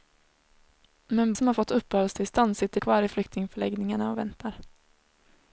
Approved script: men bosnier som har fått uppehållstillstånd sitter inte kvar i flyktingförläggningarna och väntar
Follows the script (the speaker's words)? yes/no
no